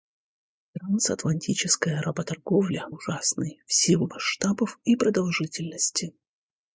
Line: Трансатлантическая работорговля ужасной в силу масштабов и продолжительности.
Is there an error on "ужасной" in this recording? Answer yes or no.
no